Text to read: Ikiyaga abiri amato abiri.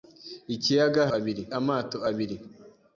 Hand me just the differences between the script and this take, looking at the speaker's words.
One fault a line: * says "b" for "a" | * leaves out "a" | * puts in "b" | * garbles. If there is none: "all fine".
all fine